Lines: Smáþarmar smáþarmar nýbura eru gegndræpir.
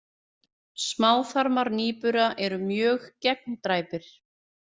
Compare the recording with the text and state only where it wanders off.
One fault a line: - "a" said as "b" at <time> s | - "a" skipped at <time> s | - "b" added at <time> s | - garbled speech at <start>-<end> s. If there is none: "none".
- "smáþarmar" skipped at 1.7 s
- "mjög" added at 2.7 s